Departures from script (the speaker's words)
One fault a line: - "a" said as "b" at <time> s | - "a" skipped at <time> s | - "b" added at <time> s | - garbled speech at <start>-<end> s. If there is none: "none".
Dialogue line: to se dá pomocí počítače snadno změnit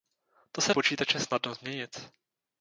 - "dá pomocí" skipped at 0.7 s